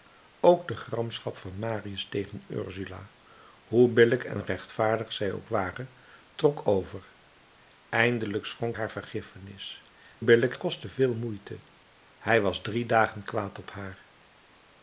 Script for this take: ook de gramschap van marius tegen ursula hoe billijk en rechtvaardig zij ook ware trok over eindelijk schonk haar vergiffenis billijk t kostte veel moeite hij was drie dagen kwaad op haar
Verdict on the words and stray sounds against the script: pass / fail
pass